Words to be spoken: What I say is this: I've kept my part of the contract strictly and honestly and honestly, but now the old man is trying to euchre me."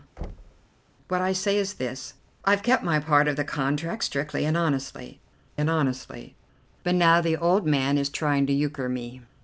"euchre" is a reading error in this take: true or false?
false